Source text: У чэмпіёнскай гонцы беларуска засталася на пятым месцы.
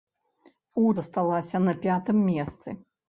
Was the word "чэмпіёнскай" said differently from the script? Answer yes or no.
yes